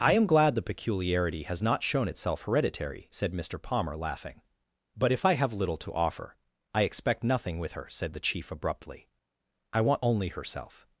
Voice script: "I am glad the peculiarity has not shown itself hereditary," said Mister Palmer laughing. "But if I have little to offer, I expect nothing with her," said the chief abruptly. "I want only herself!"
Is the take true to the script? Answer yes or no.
yes